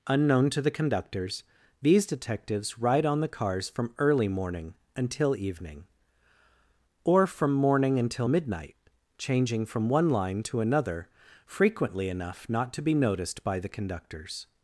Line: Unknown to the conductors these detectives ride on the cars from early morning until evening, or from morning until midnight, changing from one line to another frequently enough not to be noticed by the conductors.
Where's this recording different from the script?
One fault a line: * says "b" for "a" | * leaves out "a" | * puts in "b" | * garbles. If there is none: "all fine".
all fine